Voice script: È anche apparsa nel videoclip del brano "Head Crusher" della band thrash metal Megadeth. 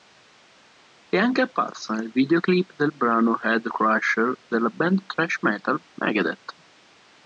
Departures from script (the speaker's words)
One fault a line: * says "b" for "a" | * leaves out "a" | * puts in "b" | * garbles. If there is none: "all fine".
all fine